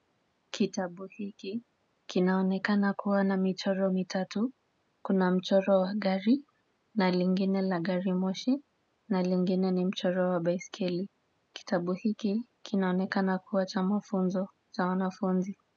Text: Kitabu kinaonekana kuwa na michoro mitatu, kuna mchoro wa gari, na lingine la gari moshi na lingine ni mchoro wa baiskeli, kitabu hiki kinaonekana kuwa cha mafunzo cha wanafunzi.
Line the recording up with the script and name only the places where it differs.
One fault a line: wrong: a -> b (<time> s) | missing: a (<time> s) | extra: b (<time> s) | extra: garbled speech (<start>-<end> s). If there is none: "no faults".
extra: hiki (1.1 s)